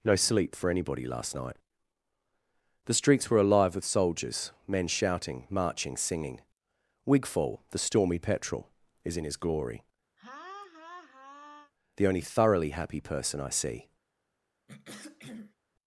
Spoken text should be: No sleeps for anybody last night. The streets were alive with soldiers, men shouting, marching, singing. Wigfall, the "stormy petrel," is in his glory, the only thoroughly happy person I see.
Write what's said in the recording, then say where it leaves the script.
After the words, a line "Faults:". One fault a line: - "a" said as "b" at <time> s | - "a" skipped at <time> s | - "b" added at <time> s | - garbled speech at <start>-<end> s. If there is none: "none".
No sleep for anybody last night. The streets were alive with soldiers, men shouting, marching, singing. Wigfall, the "stormy petrel," is in his glory, the only thoroughly happy person I see.
Faults:
- "sleeps" said as "sleep" at 0.1 s